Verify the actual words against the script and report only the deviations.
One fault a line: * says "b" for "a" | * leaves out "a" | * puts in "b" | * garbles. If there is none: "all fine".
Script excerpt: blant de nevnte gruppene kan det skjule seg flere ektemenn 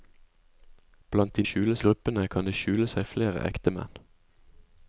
* says "skjule" for "nevnte"